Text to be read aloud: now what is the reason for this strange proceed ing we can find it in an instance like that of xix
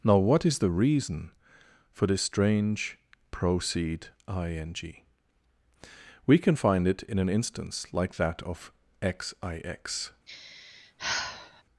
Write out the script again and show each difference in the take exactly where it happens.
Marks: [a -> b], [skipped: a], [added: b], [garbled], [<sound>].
now what is the reason for this strange proceed ing we can find it in an instance like that of xix [sigh]